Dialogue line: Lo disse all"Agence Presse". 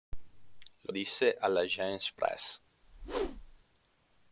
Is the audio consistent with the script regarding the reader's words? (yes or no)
yes